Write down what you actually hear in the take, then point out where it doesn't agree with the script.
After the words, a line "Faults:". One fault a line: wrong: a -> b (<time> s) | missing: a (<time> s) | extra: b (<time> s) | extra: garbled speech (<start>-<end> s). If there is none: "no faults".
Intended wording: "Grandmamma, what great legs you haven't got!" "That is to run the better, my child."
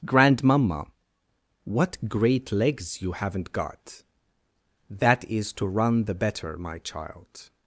"Grandmamma, what great legs you haven't got!" "That is to run the better, my child."
Faults:
no faults